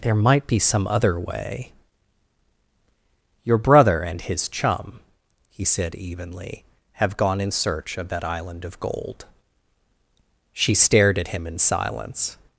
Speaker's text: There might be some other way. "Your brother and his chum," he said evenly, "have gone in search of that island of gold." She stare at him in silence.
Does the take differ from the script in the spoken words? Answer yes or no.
yes